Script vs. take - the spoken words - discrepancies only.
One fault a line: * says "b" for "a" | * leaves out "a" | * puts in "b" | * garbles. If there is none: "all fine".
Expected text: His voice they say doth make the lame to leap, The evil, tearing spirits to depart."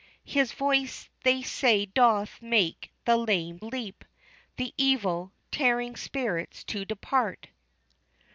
* leaves out "to"